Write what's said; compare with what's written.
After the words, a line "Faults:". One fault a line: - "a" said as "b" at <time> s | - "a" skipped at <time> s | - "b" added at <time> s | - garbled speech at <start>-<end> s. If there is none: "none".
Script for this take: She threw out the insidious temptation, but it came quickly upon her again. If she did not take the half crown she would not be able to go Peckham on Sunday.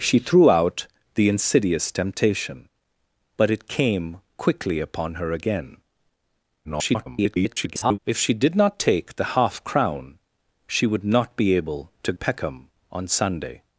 She threw out the insidious temptation, but it came quickly upon her again. [garbled] If she did not take the half crown she would not be able to Peckham on Sunday.
Faults:
- garbled speech at 6.6-8.0 s
- "go" skipped at 12.1 s